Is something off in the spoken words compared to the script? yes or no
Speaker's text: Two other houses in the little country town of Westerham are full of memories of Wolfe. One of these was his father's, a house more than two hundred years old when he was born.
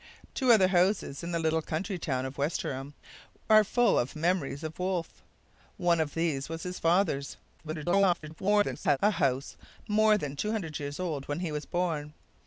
yes